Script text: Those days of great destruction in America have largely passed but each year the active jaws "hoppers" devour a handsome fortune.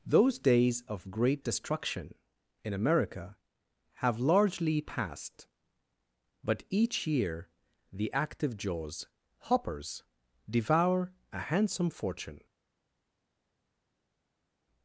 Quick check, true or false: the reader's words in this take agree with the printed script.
true